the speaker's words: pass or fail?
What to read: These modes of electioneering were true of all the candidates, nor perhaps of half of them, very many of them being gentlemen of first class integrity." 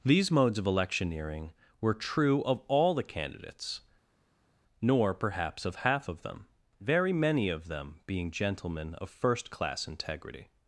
pass